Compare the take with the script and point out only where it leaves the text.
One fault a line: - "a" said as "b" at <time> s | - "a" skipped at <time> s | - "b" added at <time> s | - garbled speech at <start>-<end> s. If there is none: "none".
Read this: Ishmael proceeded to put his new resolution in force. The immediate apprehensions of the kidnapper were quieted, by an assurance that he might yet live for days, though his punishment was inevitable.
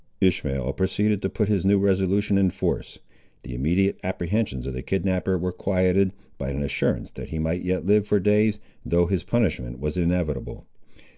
none